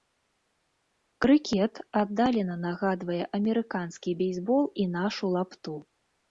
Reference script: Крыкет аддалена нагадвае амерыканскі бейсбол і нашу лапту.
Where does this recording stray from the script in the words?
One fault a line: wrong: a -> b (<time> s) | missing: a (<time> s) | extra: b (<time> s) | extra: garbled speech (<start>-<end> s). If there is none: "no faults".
no faults